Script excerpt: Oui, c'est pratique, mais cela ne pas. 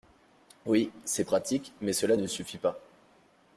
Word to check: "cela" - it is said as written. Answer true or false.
true